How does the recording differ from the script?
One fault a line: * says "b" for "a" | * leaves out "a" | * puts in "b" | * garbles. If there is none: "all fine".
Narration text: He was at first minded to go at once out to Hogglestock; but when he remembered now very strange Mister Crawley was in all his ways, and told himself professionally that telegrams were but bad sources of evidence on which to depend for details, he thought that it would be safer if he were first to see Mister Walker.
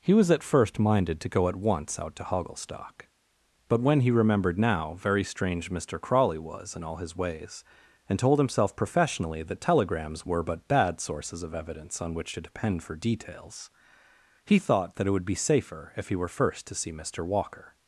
all fine